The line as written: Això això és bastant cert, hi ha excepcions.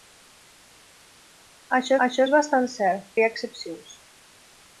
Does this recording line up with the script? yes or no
yes